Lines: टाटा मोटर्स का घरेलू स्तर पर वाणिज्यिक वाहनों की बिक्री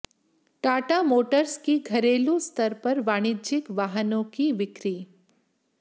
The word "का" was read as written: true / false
false